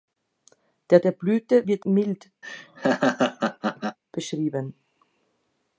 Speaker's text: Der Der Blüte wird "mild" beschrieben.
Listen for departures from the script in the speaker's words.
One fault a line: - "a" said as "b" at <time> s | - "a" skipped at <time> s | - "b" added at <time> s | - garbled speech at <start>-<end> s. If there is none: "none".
none